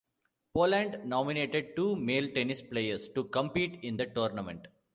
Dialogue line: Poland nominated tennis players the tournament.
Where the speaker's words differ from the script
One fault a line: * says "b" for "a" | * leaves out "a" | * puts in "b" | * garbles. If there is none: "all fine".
* puts in "two male"
* puts in "to compete in"